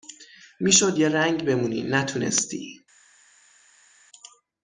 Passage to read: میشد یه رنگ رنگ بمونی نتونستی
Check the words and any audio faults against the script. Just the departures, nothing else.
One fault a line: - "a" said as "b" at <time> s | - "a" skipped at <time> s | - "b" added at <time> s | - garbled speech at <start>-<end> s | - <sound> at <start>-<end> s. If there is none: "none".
- "رنگ" skipped at 1.5 s